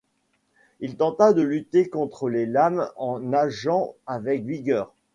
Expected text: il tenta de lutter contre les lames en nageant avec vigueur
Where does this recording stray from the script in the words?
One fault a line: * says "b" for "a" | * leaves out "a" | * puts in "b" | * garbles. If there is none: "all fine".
all fine